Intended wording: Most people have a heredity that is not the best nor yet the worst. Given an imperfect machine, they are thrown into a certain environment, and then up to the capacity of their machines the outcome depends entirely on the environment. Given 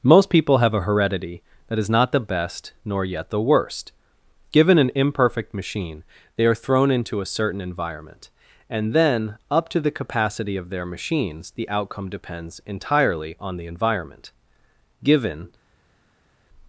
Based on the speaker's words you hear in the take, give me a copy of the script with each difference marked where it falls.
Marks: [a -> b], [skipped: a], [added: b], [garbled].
Most people have a heredity that is not the best nor yet the worst. Given an imperfect machine, they are thrown into a certain environment, and then up to the capacity of their machines the outcome depends entirely on the environment. Given